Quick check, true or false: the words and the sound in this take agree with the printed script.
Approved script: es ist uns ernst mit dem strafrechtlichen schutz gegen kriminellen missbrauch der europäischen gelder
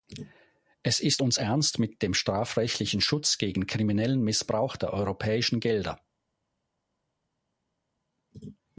true